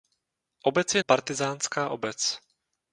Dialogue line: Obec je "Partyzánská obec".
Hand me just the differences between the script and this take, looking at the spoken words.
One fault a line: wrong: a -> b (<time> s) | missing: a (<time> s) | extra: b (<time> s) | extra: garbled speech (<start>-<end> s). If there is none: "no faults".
no faults